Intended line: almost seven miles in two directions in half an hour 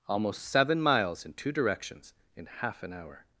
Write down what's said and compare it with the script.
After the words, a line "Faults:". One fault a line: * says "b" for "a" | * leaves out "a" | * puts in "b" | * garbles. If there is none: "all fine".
almost seven miles in two directions in half an hour
Faults:
all fine